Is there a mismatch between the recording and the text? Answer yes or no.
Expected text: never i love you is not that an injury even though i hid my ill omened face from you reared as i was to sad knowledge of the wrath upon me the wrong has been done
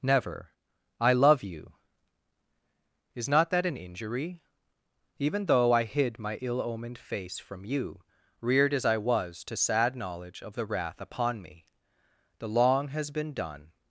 yes